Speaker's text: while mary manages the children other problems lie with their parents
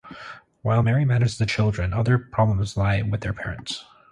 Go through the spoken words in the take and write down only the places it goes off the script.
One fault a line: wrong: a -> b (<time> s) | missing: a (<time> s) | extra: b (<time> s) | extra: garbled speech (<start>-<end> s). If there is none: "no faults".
no faults